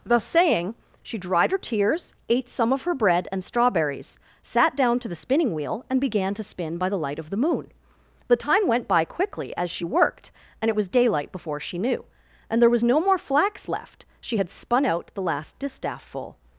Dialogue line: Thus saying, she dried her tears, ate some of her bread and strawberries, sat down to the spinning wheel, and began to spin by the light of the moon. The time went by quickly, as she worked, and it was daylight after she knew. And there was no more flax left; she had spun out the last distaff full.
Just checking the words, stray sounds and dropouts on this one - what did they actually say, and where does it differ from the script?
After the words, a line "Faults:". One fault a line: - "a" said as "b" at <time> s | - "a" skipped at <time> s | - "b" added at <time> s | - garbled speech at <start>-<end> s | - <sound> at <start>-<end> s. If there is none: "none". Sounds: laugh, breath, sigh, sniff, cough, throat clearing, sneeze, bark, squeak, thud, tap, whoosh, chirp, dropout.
Thus saying, she dried her tears, ate some of her bread and strawberries, sat down to the spinning wheel, and began to spin by the light of the moon. The time went by quickly, as she worked, and it was daylight before she knew. And there was no more flax left; she had spun out the last distaff full.
Faults:
- "after" said as "before" at 11.3 s